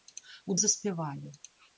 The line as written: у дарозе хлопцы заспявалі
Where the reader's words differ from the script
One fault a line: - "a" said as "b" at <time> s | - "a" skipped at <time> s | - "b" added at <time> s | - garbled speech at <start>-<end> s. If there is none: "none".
- "дарозе хлопцы" skipped at 0.6 s